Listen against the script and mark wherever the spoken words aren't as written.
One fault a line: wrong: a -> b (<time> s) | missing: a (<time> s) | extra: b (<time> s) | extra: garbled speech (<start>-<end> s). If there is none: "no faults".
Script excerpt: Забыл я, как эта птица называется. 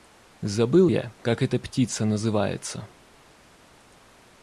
no faults